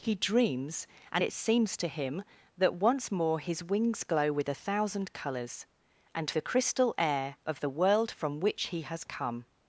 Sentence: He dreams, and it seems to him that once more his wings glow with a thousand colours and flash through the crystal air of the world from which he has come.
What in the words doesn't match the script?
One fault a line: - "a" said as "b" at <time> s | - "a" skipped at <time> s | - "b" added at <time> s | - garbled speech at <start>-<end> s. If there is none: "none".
- "flash through" skipped at 6.3 s